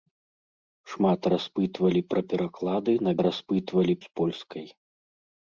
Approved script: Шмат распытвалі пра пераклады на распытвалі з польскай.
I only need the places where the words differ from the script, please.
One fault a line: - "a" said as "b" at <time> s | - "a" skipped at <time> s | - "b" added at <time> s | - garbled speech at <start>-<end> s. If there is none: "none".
none